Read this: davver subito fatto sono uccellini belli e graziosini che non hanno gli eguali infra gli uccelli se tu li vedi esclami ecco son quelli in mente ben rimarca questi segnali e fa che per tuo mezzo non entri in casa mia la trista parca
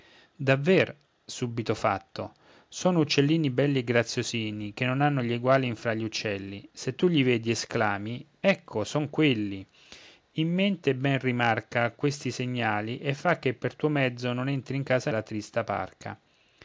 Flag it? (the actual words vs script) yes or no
yes